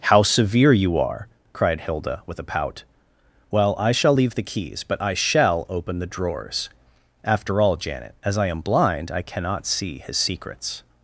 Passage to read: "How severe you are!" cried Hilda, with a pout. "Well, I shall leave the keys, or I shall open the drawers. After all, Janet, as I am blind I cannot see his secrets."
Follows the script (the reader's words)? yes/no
no